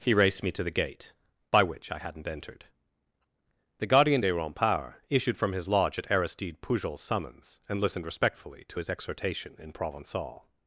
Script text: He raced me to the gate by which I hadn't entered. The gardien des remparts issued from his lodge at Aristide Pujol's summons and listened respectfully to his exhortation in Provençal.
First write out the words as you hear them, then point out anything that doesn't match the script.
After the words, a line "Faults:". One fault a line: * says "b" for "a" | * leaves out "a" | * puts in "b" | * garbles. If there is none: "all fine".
He raced me to the gate by which I hadn't entered. The gardien des remparts issued from his lodge at Aristide Pujol's summons and listened respectfully to his exhortation in Provençal.
Faults:
all fine